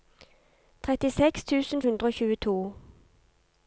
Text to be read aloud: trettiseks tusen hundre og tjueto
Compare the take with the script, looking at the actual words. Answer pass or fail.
pass